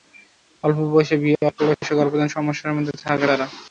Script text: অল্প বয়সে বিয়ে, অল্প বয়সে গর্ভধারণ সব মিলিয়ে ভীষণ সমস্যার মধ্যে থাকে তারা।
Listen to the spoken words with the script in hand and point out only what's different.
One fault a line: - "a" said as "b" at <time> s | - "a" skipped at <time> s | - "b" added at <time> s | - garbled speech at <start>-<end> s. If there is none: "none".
- "সব মিলিয়ে ভীষণ" skipped at 2.3 s